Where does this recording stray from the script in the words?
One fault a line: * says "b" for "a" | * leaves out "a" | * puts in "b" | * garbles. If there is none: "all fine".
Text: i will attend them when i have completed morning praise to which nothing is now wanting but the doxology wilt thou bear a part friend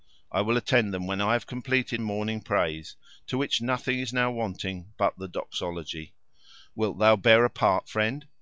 all fine